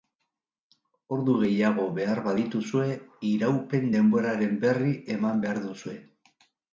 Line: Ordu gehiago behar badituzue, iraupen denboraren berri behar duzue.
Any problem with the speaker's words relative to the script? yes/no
yes